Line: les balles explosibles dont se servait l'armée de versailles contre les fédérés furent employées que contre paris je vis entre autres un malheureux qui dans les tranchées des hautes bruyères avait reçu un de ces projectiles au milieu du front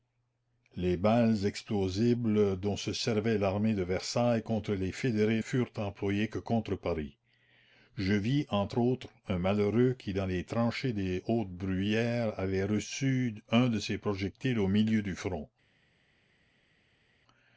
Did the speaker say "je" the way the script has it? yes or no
yes